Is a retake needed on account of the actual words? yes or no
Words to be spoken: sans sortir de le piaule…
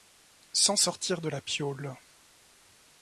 yes